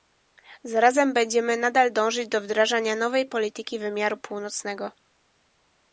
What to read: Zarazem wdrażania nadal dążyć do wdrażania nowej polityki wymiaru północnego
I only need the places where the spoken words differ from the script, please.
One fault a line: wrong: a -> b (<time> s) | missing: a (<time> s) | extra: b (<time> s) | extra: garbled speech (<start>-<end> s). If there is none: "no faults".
wrong: wdrażania -> będziemy (1.1 s)